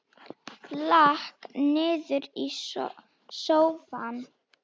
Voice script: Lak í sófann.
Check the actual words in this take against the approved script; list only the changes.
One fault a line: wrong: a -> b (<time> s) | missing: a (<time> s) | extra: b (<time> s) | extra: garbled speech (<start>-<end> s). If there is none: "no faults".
extra: niður (1.8 s)